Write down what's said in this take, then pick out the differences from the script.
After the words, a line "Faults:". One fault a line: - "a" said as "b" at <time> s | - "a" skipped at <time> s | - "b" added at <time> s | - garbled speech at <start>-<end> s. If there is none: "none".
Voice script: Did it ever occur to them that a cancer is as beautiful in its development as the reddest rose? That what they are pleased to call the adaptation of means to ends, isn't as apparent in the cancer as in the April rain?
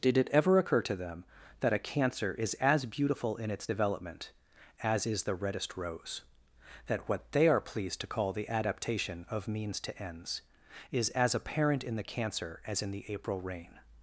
Did it ever occur to them that a cancer is as beautiful in its development as is the reddest rose? That what they are pleased to call the adaptation of means to ends, is as apparent in the cancer as in the April rain?
Faults:
- "is" added at 5.1 s
- "isn't" said as "is" at 10.9 s